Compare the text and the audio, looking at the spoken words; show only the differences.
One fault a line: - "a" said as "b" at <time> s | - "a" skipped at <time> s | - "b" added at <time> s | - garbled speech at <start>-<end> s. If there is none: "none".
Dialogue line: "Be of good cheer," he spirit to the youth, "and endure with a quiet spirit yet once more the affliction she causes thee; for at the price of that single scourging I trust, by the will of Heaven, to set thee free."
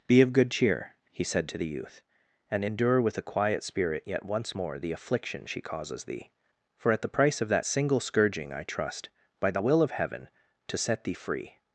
- "spirit" said as "said" at 1.2 s